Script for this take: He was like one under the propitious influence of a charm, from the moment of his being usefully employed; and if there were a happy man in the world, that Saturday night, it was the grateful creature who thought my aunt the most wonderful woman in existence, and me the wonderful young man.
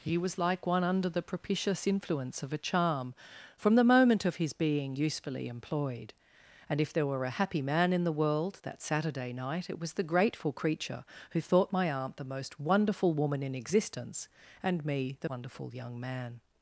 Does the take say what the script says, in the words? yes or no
yes